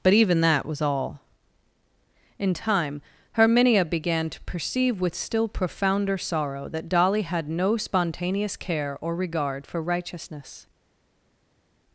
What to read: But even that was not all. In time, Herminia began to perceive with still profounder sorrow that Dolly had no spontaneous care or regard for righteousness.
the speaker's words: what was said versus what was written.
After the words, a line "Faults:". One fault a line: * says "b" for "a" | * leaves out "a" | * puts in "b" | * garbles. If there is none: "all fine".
But even that was all. In time, Herminia began to perceive with still profounder sorrow that Dolly had no spontaneous care or regard for righteousness.
Faults:
* leaves out "not"